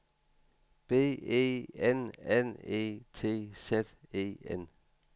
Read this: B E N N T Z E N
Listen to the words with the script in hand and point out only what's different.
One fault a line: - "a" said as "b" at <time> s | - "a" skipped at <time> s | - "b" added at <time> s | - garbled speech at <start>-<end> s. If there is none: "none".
- "E" added at 2.6 s